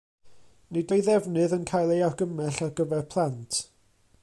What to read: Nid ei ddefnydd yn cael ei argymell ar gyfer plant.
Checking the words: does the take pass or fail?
pass